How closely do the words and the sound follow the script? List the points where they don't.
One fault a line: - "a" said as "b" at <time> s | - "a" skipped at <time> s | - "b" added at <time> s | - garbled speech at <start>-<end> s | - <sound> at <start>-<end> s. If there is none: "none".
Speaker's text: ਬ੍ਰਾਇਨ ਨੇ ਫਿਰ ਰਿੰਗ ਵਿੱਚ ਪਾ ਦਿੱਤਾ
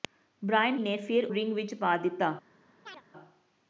- chirp at 2.9-3.0 s